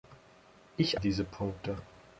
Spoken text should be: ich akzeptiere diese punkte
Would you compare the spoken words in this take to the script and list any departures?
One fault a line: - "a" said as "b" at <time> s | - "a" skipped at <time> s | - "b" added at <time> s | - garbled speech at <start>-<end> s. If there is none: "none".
- "akzeptiere" skipped at 1.0 s